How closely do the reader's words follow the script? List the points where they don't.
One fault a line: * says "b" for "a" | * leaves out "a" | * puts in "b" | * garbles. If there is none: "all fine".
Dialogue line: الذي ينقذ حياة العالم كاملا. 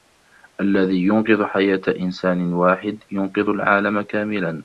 * puts in "إنسان واحد ينقذ"